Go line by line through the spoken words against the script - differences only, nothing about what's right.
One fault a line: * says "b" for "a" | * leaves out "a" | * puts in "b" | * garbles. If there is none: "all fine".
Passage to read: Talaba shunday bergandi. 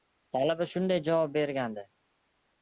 * puts in "javob"